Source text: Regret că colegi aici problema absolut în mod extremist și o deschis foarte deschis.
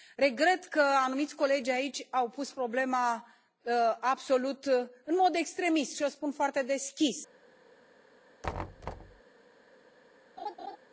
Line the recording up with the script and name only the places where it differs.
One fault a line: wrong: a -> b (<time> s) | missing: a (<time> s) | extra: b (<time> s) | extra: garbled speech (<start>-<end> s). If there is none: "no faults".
extra: anumiți (0.8 s)
extra: au pus (2.1 s)
wrong: deschis -> spun (6.1 s)